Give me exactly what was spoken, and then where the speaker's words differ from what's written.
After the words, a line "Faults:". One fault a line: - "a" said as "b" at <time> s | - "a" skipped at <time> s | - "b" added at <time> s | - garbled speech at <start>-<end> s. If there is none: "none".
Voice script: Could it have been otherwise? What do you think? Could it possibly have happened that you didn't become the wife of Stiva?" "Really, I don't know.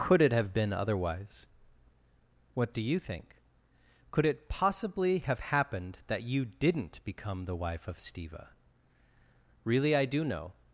Could it have been otherwise? What do you think? Could it possibly have happened that you didn't become the wife of Stiva?" "Really, I do know.
Faults:
- "don't" said as "do" at 10.1 s